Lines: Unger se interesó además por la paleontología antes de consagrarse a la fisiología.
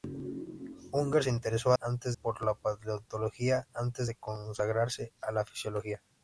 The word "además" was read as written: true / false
false